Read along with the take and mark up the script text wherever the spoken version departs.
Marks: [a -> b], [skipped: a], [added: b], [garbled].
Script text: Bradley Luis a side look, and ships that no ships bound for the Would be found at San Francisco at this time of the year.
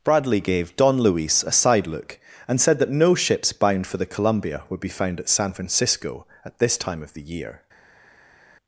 Bradley [added: gave Don] Luis a side look, and [ships -> said] that no ships bound for the [added: Columbia] Would be found at San Francisco at this time of the year.